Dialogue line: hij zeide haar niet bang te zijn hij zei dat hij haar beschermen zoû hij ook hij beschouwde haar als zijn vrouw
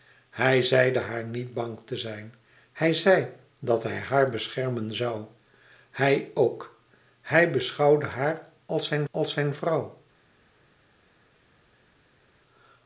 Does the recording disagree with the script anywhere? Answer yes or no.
yes